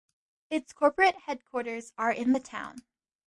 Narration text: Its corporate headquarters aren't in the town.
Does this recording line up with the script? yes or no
no